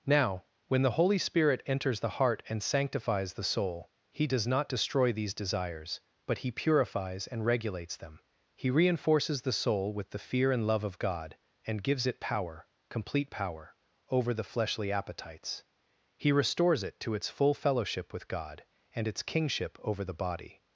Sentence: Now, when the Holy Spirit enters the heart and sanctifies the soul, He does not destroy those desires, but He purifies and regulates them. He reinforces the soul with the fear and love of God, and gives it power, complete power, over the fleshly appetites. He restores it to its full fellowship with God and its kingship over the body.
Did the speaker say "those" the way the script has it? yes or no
no